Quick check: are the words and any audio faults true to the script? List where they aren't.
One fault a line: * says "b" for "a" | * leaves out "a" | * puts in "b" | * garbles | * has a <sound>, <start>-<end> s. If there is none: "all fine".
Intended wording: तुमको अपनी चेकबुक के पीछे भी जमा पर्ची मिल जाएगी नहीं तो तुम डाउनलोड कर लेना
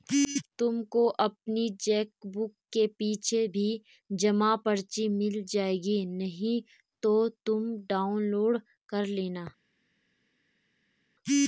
all fine